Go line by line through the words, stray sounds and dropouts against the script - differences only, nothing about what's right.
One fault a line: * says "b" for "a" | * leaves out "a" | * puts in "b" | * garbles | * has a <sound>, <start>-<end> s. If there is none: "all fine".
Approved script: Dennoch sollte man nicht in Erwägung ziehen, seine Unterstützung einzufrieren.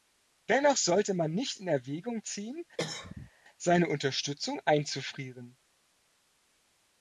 * has a cough, 2.8-3.3 s